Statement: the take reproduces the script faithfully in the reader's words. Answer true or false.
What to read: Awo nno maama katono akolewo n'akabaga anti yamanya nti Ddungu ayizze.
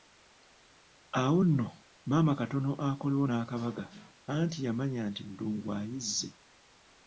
true